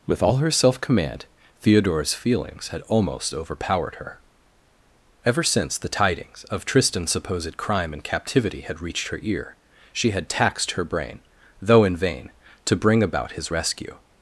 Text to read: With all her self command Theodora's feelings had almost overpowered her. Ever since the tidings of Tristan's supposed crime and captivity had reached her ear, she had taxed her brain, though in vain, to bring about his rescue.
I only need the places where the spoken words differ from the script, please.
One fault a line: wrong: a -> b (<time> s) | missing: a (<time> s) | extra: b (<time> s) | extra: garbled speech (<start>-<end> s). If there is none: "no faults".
no faults